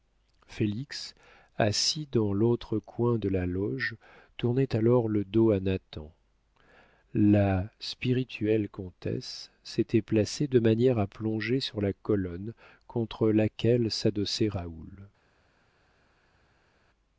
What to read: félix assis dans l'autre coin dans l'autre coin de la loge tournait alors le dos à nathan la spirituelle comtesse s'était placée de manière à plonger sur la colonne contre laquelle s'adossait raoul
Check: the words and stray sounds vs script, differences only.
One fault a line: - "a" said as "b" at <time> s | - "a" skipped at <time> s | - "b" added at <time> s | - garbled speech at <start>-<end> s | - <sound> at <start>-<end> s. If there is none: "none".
- "dans l'autre coin" skipped at 3.2 s